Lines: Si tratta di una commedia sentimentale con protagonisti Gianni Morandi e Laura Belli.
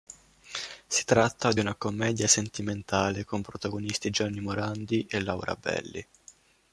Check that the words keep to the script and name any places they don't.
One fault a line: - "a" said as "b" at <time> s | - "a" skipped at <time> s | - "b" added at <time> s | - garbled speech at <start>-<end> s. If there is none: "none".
none